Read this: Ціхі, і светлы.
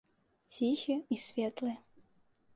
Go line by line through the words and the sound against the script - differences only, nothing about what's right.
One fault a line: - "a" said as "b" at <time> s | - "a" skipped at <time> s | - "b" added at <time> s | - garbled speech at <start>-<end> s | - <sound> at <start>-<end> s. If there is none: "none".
none